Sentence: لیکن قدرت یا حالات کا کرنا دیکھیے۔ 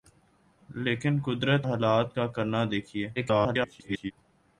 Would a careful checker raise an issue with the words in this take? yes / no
yes